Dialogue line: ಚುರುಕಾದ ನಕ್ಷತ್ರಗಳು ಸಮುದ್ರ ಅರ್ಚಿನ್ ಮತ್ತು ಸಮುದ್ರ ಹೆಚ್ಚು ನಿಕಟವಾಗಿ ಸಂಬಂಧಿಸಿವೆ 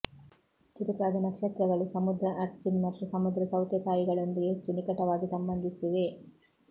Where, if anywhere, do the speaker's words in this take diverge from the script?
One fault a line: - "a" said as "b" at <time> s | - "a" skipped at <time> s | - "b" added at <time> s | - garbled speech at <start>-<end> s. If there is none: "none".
- "ಸೌತೆಕಾಯಿಗಳೊಂದಿಗೆ" added at 3.5 s